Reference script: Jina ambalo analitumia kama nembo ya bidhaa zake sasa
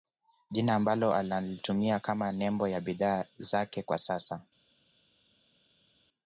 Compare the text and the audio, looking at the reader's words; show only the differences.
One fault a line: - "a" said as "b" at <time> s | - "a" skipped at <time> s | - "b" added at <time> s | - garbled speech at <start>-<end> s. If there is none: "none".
- "kwa" added at 3.8 s